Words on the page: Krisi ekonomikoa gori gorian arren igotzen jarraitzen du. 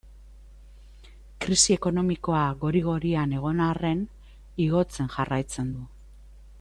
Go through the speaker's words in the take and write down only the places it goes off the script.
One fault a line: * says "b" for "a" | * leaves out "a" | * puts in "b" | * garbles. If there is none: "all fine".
* puts in "egon"